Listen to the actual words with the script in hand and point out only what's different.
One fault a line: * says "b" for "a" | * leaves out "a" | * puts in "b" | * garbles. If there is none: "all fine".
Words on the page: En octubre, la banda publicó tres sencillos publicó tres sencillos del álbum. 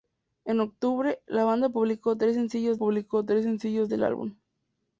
all fine